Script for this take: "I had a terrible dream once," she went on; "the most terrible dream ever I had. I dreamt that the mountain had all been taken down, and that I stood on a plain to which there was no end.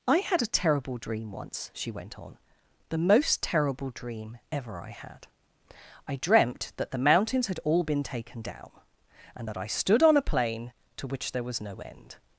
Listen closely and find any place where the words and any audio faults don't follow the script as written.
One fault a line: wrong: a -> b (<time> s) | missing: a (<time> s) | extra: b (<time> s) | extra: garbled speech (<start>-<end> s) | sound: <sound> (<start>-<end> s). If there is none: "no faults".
wrong: mountain -> mountains (7.0 s)